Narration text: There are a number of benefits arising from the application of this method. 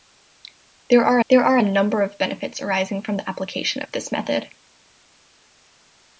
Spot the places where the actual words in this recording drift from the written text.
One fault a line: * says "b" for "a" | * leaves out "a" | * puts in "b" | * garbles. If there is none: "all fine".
* puts in "there are"